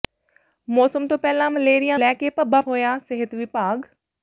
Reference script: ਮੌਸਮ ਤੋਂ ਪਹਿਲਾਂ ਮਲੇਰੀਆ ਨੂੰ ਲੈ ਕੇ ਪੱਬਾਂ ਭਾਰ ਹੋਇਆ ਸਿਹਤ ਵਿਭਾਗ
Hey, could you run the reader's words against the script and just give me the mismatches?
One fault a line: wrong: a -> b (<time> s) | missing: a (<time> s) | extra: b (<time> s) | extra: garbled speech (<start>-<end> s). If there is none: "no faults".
missing: ਨੂੰ (2.0 s)
missing: ਭਾਰ (2.6 s)